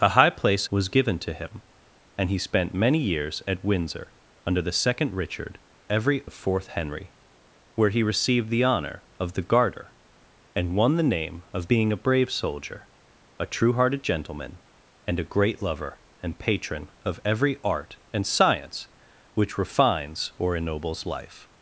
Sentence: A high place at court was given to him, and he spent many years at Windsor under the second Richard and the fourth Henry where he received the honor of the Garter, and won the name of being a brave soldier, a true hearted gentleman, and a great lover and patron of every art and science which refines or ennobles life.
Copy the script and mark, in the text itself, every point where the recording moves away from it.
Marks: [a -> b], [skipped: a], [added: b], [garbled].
A high place [skipped: at court] was given to him, and he spent many years at Windsor under the second Richard [and -> every] the fourth Henry where he received the honor of the Garter, and won the name of being a brave soldier, a true hearted gentleman, and a great lover and patron of every art and science which refines or ennobles life.